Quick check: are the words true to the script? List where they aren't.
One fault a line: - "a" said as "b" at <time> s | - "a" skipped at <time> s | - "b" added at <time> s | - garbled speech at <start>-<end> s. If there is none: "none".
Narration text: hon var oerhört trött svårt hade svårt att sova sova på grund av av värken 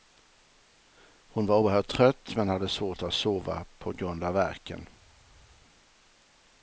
- "svårt" said as "men" at 2.3 s
- "sova" skipped at 3.6 s
- "av" skipped at 4.3 s